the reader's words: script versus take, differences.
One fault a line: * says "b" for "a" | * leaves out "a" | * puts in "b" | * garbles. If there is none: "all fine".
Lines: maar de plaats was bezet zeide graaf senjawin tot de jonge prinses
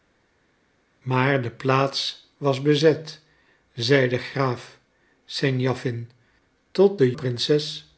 * leaves out "jonge"